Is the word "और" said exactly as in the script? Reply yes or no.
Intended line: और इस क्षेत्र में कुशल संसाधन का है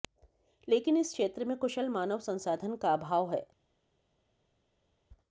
no